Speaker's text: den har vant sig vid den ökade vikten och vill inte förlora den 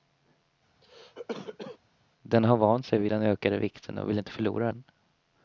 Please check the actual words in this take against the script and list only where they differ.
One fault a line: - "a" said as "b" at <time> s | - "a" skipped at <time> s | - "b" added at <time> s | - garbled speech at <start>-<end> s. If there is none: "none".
none